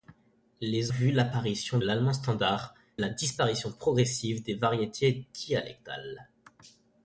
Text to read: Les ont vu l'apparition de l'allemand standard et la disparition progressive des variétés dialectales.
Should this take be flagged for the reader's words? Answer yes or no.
yes